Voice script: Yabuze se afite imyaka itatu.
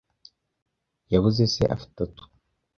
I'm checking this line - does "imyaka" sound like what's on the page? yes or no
no